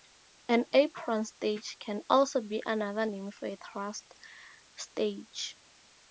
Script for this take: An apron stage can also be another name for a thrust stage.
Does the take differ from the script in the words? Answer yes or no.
no